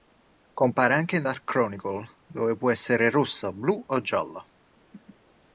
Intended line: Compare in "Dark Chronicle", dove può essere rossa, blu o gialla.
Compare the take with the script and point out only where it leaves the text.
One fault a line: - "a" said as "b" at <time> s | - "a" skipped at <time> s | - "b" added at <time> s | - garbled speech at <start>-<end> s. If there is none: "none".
- "anche" added at 0.9 s